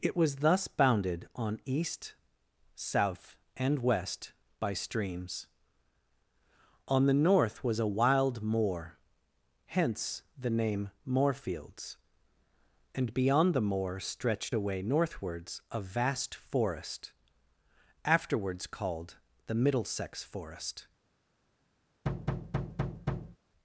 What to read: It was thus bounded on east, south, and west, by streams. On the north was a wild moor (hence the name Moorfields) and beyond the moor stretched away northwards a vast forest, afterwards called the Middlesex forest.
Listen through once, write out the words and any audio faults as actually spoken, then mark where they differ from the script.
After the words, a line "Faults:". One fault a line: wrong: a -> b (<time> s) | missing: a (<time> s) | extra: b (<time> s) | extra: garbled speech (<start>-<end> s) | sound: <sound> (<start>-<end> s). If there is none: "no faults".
It was thus bounded on east, south, and west, by streams. On the north was a wild moor (hence the name Moorfields) and beyond the moor stretched away northwards a vast forest, afterwards called the Middlesex forest.
Faults:
sound: thud (22.0-23.4 s)